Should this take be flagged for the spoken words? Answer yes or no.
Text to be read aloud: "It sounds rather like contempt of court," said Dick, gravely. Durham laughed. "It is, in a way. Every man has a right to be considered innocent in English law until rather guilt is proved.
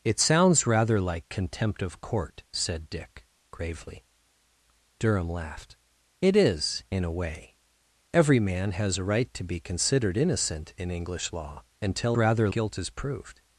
no